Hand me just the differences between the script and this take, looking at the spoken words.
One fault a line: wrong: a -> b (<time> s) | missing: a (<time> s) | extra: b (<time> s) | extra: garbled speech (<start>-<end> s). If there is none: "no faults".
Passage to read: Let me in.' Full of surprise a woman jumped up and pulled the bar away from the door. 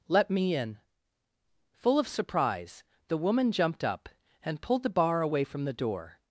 wrong: a -> the (3.1 s)